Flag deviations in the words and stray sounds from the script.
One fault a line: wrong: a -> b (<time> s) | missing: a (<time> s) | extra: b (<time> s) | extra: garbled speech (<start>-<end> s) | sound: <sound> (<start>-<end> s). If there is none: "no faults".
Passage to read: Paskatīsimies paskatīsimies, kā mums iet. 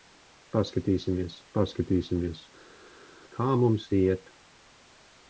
no faults